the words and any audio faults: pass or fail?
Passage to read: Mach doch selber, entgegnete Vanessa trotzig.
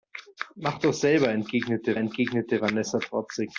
fail